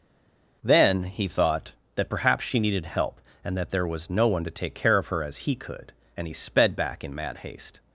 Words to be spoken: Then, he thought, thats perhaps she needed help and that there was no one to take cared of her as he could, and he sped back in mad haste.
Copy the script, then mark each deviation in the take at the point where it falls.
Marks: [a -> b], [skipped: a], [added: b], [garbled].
Then, he thought, [thats -> that] perhaps she needed help and that there was no one to take [cared -> care] of her as he could, and he sped back in mad haste.